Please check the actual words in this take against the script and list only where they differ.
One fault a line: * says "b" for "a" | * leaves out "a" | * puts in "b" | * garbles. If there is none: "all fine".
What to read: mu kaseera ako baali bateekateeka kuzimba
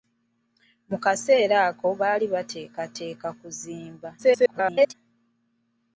* garbles